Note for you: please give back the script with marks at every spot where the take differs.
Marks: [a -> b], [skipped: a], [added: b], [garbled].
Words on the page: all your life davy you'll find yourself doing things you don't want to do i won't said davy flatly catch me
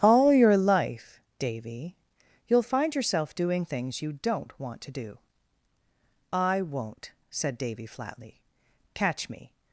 all your life davy you'll find yourself doing things you don't want to do i won't said davy flatly catch me